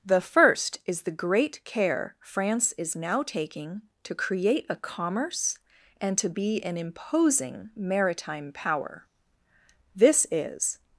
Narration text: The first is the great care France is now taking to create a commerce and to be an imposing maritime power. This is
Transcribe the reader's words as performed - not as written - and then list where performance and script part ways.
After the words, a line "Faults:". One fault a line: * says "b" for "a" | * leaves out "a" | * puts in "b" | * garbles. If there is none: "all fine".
The first is the great care France is now taking to create a commerce and to be an imposing maritime power. This is
Faults:
all fine